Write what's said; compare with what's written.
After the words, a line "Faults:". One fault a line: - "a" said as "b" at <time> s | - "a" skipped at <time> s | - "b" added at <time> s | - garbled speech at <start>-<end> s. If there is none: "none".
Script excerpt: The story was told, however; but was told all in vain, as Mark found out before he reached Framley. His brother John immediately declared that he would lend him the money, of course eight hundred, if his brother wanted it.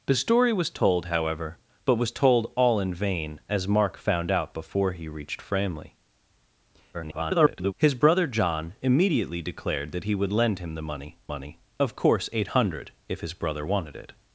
The story was told, however; but was told all in vain, as Mark found out before he reached Framley. [garbled] His brother John immediately declared that he would lend him the money money, of course eight hundred, if his brother wanted it.
Faults:
- garbled speech at 6.9-7.7 s
- "money" added at 11.3 s